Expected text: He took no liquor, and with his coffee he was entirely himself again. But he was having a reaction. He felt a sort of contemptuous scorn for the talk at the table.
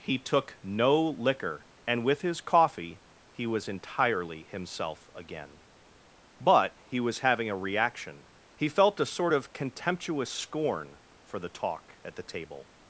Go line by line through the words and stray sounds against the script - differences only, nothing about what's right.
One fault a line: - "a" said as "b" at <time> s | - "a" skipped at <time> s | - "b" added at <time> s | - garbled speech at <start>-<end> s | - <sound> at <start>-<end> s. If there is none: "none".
none